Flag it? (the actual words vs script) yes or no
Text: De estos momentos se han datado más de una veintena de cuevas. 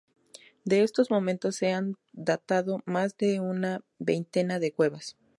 no